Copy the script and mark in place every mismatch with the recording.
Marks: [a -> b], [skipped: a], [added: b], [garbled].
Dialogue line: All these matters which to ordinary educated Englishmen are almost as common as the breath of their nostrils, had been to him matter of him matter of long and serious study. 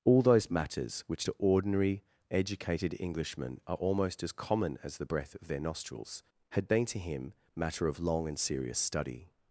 All [these -> those] matters which to ordinary educated Englishmen are almost as common as the breath of their nostrils, had been to him matter of [skipped: him matter of] long and serious study.